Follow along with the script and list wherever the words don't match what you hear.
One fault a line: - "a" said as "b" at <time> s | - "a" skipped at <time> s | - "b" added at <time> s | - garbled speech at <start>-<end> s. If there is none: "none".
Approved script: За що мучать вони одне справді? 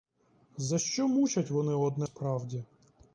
none